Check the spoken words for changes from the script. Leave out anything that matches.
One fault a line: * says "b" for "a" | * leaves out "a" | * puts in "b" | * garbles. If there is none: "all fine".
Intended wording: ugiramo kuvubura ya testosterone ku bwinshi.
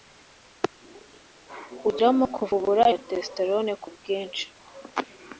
all fine